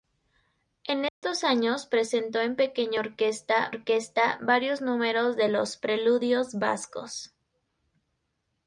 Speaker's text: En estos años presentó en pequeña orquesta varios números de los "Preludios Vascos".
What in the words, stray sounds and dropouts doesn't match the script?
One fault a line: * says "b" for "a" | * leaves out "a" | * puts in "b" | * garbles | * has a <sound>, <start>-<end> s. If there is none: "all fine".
* has a dropout, 1.1-1.2 s
* puts in "orquesta"